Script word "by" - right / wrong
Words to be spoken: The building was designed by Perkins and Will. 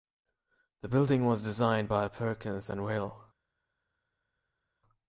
right